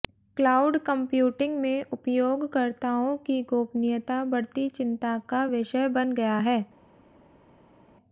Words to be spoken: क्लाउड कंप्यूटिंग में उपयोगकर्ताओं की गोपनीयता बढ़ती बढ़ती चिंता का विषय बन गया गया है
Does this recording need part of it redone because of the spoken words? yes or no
yes